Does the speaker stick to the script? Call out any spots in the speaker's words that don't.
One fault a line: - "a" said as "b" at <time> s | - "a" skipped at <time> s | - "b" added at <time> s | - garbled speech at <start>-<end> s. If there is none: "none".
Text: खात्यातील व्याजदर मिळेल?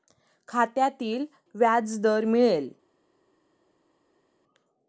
none